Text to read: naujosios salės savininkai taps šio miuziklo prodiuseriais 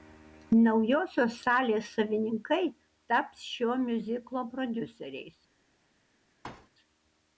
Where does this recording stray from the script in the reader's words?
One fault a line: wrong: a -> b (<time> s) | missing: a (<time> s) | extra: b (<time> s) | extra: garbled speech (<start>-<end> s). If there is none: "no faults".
no faults